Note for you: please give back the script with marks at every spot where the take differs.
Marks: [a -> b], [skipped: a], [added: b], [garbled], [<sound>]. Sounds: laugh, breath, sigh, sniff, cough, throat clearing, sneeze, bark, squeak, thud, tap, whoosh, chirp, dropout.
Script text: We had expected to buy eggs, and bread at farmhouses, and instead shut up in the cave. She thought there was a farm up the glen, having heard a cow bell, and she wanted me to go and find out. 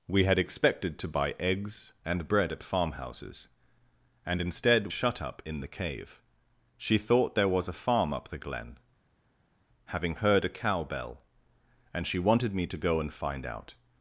We had expected to buy eggs, and bread at farmhouses, and instead shut up in the cave. She thought there was a farm up the glen, having heard a cow bell, and she wanted me to go and find out.